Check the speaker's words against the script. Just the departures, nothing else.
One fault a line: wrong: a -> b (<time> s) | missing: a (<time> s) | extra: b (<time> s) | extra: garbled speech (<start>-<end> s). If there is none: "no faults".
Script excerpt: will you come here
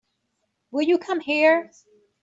no faults